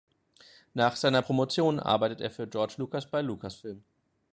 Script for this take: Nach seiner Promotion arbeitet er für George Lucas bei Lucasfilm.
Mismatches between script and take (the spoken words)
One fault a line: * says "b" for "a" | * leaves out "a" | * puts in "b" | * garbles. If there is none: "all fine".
all fine